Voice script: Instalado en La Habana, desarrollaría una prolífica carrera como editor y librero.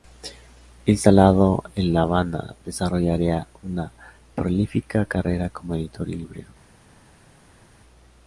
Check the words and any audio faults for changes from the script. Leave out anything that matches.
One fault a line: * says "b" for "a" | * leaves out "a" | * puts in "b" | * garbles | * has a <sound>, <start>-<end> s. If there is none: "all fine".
all fine